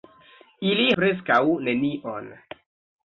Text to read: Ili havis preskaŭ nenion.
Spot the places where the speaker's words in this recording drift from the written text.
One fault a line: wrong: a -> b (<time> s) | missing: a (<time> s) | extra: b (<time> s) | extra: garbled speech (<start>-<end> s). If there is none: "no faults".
missing: havis (0.9 s)